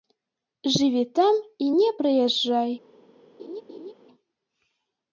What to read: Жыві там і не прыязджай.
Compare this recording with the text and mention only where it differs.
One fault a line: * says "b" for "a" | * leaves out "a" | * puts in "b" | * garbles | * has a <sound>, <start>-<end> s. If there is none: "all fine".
* has a laugh, 3.4-3.9 s